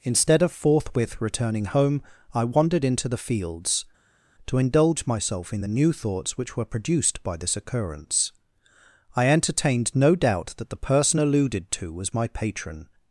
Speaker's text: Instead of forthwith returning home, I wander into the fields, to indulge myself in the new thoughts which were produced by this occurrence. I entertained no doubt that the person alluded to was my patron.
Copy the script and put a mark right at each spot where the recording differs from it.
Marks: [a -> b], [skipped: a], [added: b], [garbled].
Instead of forthwith returning home, I [wander -> wandered] into the fields, to indulge myself in the new thoughts which were produced by this occurrence. I entertained no doubt that the person alluded to was my patron.